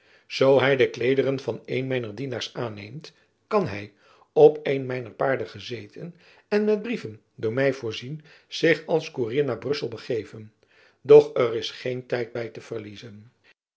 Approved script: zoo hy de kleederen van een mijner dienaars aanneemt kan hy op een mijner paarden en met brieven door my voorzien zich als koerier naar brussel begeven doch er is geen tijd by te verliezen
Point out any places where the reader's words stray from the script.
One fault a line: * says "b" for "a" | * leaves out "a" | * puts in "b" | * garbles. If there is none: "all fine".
* puts in "gezeten"